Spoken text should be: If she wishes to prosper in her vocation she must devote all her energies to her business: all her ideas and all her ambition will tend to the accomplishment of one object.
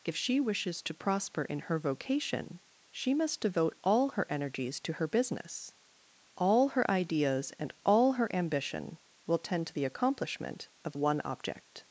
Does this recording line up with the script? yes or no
yes